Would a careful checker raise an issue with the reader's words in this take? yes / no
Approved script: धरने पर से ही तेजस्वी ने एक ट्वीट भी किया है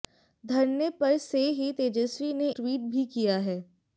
yes